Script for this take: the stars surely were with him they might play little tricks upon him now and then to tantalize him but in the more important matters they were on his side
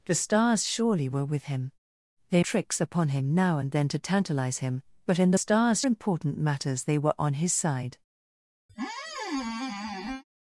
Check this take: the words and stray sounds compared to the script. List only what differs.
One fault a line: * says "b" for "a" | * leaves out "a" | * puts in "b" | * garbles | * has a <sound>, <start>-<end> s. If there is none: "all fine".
* leaves out "might play little"
* says "stars" for "more"
* has a squeak, 8.7-10.2 s